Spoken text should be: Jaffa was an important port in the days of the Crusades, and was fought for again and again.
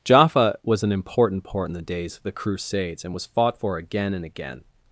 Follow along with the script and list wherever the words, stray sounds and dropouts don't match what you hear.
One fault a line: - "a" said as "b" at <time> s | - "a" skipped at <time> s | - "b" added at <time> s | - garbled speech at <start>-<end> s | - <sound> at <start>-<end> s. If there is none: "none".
none